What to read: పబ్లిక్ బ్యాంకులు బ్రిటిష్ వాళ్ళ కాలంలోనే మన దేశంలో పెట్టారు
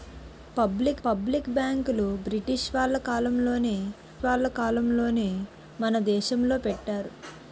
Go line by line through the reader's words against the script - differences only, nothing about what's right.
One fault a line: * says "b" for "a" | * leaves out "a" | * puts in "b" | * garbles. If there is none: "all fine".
* puts in "పబ్లిక్"
* puts in "వాళ్ళ కాలంలోనే"